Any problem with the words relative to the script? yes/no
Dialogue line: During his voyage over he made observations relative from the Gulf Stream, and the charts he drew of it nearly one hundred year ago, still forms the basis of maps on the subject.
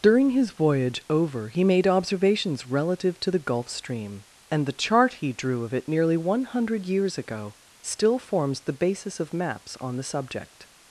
yes